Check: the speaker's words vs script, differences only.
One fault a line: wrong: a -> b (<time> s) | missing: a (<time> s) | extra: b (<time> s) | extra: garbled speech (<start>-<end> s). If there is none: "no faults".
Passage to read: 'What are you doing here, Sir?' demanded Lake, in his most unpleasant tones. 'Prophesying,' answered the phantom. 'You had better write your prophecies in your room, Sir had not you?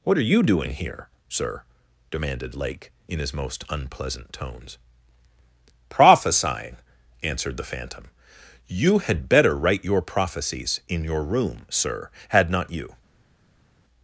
no faults